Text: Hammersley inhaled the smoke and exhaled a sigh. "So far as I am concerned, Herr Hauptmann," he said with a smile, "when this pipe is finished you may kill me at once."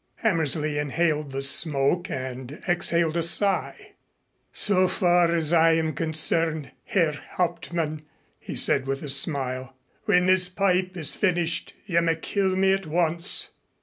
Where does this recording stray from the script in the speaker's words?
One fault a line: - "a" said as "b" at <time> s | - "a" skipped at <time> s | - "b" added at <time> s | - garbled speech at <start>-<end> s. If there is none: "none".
none